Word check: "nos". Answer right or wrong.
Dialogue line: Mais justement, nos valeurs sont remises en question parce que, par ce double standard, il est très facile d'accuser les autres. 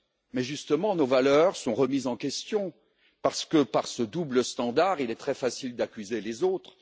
right